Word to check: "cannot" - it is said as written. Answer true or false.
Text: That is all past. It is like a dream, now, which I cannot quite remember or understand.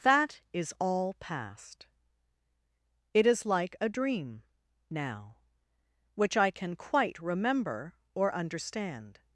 false